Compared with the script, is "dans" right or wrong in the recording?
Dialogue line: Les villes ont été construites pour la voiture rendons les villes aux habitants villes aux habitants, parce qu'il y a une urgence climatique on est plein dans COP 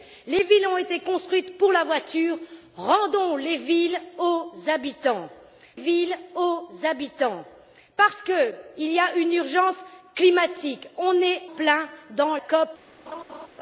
right